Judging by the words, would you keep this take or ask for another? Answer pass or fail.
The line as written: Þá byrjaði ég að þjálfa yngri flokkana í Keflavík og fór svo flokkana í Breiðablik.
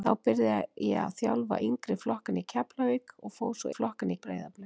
pass